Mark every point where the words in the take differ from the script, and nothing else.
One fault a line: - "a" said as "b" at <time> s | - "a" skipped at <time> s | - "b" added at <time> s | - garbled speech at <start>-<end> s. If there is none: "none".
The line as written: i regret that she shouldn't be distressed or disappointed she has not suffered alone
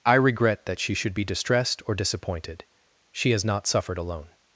- "shouldn't" said as "should" at 0.9 s